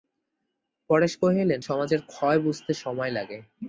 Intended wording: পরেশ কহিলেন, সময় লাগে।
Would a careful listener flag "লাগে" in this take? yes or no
no